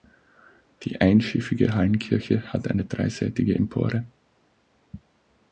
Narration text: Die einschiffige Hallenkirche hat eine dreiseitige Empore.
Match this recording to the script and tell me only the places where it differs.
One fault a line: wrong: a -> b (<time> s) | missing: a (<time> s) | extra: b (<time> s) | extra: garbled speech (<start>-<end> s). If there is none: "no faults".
no faults